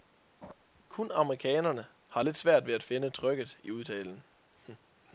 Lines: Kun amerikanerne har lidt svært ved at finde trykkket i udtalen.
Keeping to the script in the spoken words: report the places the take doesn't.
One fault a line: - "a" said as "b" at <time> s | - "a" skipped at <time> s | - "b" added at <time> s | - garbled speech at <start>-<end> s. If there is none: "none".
none